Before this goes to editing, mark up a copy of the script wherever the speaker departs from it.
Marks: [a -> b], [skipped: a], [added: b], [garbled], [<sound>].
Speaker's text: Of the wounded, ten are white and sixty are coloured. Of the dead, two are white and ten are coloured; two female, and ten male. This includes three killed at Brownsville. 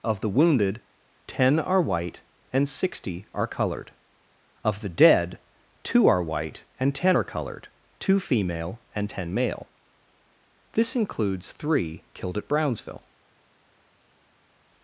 Of the wounded, ten are white and sixty are coloured. Of the dead, two are white and ten are coloured; two female, and ten male. This includes three killed at Brownsville.